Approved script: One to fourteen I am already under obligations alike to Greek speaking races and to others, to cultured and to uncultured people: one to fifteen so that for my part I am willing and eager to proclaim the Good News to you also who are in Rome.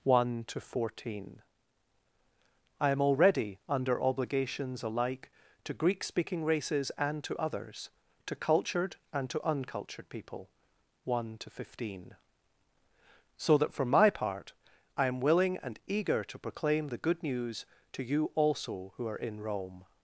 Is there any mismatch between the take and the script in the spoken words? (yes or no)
no